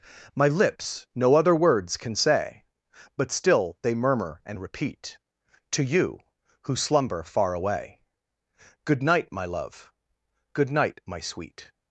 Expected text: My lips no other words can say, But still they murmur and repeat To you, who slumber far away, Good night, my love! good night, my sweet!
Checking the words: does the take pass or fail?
pass